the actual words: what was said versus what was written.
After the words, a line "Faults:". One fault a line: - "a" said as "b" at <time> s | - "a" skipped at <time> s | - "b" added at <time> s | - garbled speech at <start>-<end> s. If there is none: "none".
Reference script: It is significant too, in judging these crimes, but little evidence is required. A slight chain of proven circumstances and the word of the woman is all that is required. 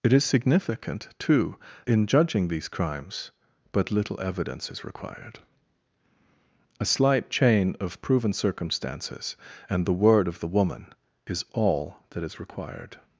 It is significant too, in judging these crimes, but little evidence is required. A slight chain of proven circumstances and the word of the woman is all that is required.
Faults:
none